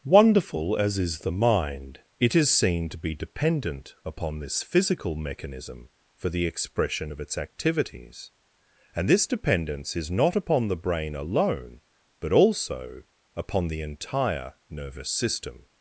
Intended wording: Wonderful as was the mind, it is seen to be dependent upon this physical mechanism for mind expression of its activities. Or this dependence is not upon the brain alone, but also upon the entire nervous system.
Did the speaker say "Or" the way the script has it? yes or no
no